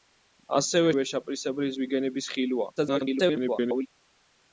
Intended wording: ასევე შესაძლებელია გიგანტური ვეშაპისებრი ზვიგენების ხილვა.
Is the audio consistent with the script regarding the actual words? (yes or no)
no